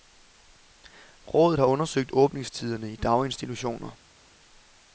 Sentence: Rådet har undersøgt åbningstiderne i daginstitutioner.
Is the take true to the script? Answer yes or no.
yes